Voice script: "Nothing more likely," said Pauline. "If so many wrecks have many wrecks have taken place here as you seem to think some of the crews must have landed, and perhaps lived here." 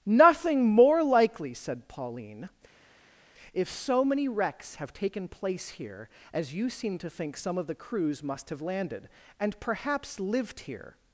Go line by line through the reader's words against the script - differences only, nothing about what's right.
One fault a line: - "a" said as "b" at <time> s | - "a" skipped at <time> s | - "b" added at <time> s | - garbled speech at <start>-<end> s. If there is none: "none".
- "many wrecks have" skipped at 4.9 s